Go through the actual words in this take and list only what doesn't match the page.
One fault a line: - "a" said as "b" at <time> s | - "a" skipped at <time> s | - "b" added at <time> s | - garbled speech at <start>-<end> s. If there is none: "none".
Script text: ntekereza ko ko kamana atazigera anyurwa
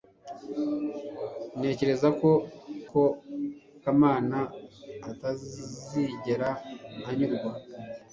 none